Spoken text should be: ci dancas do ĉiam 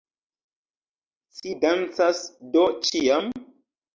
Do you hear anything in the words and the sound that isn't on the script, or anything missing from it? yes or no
no